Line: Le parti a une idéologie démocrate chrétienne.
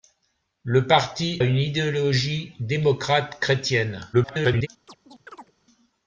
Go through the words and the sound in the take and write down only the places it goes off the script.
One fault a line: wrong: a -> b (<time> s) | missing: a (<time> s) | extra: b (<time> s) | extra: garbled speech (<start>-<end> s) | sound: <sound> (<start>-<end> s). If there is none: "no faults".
missing: a (1.4 s)
extra: garbled speech (4.1-4.7 s)
sound: chirp (4.9-5.5 s)